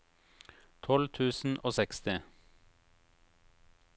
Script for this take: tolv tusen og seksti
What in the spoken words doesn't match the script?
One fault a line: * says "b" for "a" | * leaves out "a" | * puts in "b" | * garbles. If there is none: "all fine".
all fine